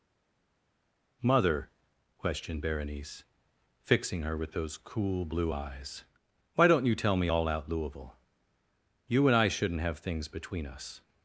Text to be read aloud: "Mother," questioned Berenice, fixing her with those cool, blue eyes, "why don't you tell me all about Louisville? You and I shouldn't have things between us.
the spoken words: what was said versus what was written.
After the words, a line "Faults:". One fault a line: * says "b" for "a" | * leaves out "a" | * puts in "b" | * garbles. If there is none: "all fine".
"Mother," questioned Berenice, fixing her with those cool, blue eyes, "why don't you tell me all out Louisville? You and I shouldn't have things between us.
Faults:
* says "out" for "about"